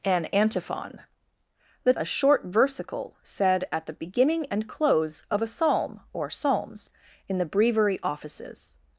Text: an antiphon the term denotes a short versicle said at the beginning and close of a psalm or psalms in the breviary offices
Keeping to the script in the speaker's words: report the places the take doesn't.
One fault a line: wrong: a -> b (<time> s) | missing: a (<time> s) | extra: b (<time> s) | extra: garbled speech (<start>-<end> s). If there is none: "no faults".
missing: term denotes (1.9 s)